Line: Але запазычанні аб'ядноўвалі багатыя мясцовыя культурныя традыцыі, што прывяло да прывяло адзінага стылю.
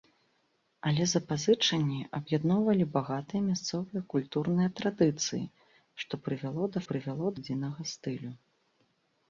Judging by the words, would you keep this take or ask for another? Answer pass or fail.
pass